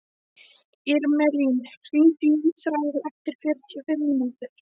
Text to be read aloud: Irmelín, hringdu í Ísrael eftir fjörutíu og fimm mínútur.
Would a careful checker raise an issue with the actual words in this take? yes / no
no